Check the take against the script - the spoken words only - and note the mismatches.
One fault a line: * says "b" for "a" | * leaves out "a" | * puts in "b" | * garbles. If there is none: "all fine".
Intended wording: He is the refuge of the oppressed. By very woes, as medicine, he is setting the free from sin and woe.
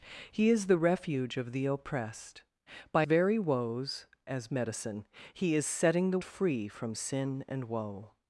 all fine